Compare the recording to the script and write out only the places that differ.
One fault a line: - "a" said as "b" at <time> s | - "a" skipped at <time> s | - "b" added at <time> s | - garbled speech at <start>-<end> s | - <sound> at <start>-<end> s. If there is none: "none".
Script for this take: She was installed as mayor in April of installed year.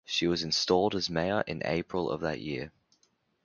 - "installed" said as "that" at 2.2 s